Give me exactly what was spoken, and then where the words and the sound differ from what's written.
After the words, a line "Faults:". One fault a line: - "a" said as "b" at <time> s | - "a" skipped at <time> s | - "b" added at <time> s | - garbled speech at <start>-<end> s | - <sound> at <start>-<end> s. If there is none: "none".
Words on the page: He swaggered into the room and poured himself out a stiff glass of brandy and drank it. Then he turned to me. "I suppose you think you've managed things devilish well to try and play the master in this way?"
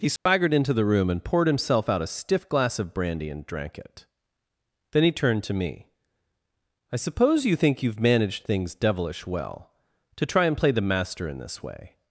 He swaggered into the room and poured himself out a stiff glass of brandy and drank it. Then he turned to me. "I suppose you think you've managed things devilish well to try and play the master in this way?"
Faults:
- dropout at 0.2-0.3 s